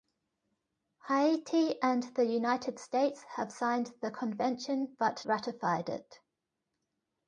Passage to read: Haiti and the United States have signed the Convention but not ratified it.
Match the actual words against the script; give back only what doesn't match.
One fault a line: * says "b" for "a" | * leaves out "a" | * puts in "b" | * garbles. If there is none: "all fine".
* leaves out "not"